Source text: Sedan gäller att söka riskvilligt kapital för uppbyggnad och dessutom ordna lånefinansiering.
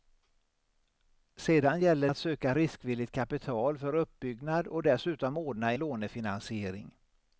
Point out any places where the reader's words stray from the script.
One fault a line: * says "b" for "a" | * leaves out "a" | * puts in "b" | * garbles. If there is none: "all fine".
all fine